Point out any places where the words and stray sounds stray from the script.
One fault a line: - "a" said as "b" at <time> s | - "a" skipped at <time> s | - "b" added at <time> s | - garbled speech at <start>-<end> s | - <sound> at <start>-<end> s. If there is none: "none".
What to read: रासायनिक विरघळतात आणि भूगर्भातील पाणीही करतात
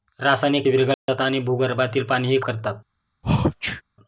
- dropout at 0.9-1.1 s
- sneeze at 3.2-3.8 s